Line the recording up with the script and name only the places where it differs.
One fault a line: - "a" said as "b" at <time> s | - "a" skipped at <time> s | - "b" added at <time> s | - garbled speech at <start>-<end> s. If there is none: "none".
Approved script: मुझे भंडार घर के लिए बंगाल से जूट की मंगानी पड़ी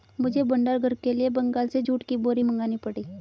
- "बोरी" added at 2.2 s